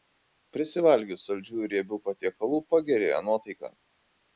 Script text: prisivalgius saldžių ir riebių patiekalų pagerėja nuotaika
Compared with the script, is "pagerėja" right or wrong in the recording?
right